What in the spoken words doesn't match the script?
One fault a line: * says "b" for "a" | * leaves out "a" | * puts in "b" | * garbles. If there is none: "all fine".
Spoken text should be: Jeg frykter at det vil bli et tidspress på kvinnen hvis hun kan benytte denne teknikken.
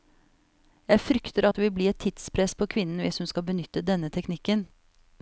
* says "skal" for "kan"